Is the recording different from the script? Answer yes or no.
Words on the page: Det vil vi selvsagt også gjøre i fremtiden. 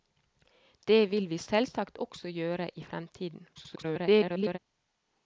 yes